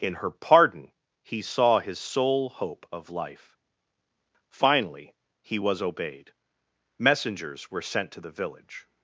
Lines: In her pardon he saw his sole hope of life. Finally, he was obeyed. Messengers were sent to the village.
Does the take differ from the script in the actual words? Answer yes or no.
no